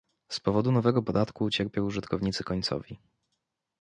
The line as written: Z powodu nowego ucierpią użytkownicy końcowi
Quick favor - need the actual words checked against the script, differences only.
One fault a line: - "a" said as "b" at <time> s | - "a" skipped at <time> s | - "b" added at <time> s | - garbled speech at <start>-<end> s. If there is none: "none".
- "podatku" added at 1.0 s